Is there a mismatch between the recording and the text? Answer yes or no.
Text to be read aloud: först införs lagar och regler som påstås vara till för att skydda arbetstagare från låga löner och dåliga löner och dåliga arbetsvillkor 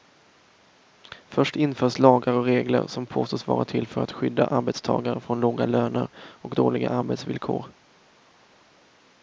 yes